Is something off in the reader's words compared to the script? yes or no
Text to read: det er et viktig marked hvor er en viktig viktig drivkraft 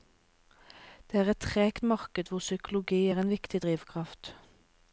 yes